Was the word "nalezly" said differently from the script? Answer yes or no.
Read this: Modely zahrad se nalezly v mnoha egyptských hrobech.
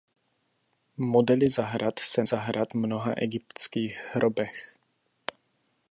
yes